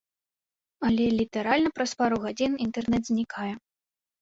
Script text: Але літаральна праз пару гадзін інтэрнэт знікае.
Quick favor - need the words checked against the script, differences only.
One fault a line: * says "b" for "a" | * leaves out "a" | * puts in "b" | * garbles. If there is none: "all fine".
all fine